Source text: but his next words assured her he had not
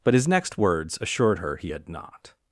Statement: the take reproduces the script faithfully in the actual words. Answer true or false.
true